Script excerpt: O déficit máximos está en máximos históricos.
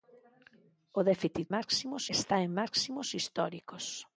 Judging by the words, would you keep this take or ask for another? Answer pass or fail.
pass